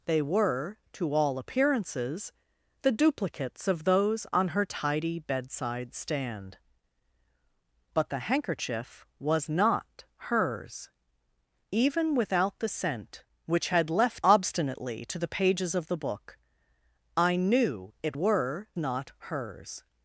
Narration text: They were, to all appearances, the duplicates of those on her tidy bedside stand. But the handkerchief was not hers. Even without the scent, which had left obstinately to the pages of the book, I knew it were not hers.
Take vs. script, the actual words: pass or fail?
pass